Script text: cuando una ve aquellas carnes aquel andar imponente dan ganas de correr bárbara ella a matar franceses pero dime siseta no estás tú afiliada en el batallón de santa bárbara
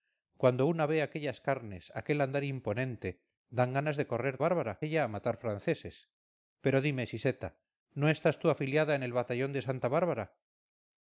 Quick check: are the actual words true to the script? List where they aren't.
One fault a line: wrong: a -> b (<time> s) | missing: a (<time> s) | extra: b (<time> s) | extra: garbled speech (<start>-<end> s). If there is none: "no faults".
no faults